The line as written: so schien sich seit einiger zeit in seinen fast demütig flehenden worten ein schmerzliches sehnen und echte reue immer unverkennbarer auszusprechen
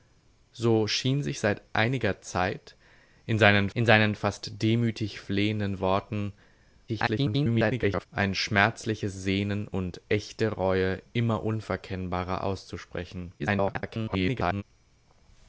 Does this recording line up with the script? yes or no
no